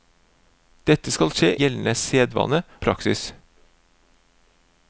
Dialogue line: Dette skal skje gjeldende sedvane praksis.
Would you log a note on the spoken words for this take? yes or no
no